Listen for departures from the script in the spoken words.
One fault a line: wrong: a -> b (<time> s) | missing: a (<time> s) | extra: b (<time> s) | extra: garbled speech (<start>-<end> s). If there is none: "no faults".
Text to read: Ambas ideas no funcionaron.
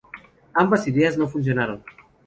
no faults